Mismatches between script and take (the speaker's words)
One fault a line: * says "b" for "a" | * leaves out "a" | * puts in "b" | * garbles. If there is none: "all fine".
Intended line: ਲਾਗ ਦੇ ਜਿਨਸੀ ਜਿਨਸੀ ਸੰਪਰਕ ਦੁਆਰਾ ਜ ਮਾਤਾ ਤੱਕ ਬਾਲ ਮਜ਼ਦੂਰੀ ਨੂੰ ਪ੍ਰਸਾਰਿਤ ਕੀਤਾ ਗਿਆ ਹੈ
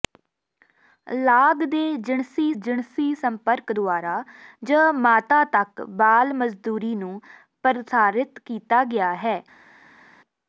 all fine